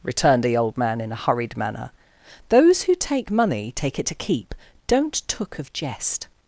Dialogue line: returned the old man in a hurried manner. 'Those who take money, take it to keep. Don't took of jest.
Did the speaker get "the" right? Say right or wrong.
right